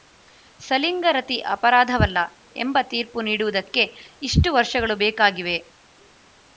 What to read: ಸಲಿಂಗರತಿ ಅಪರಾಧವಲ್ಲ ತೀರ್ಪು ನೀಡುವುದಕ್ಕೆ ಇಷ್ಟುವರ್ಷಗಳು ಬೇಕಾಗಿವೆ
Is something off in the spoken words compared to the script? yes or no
yes